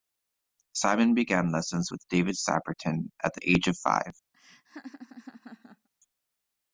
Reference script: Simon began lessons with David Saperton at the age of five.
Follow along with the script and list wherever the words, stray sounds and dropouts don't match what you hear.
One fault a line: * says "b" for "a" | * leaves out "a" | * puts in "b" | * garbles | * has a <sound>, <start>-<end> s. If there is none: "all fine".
* has a laugh, 4.3-5.9 s